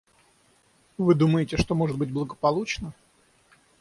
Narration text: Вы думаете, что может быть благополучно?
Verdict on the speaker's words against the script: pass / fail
pass